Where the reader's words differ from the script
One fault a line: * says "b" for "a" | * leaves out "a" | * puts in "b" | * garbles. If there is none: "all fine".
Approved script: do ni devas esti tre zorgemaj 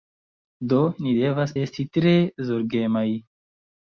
all fine